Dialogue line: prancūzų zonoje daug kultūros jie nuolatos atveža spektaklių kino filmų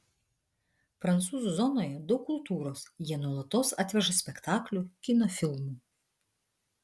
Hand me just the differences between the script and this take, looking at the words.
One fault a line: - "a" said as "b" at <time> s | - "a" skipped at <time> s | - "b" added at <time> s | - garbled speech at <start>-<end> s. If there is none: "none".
none